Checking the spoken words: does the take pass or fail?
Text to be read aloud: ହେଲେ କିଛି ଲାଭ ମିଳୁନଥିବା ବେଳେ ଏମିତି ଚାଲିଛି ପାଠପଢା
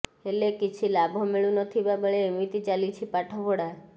pass